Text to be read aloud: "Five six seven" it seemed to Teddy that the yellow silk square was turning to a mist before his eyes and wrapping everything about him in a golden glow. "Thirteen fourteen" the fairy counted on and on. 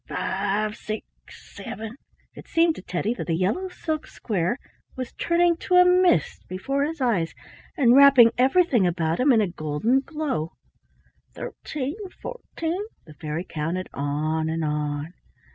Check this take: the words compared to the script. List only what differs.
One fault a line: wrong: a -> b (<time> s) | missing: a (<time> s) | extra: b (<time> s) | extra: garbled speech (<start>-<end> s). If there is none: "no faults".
no faults